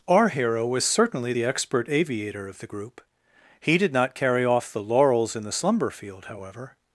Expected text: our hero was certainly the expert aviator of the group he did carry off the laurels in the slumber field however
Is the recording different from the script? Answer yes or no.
yes